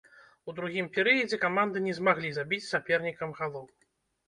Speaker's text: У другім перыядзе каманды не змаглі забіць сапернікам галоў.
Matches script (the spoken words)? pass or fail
pass